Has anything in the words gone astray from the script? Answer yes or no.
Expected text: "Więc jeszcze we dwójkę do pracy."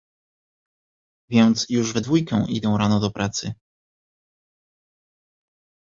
yes